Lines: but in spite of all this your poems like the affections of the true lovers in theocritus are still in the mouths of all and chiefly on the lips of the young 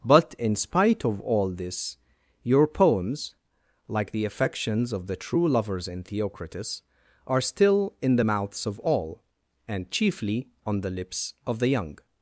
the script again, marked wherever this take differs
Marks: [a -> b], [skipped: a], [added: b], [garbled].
but in spite of all this your poems like the affections of the true lovers in theocritus are still in the mouths of all and chiefly on the lips of the young